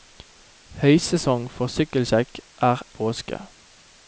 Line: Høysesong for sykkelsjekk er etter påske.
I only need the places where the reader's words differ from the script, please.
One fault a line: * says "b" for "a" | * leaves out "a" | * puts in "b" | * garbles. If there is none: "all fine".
* leaves out "etter"